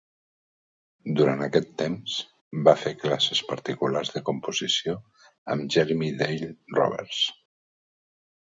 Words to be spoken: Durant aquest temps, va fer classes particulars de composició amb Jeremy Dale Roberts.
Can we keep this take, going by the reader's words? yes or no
yes